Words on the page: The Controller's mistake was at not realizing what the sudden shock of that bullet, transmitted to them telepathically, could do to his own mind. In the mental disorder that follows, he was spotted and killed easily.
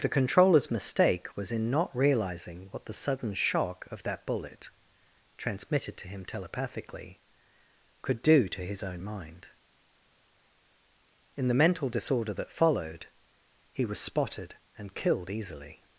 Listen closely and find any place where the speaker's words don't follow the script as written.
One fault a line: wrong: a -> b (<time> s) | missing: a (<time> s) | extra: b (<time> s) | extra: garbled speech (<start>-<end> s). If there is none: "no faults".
wrong: at -> in (1.5 s)
wrong: them -> him (6.1 s)
wrong: follows -> followed (12.5 s)